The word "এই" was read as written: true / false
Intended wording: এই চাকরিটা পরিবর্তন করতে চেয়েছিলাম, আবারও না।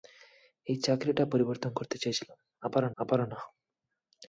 true